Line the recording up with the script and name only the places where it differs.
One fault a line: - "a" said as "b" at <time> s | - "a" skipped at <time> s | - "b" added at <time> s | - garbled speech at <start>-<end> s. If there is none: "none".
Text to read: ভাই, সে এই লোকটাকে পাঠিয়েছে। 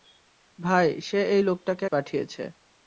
none